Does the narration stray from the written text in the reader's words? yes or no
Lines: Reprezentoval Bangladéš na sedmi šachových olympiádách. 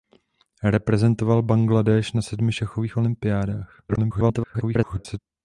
yes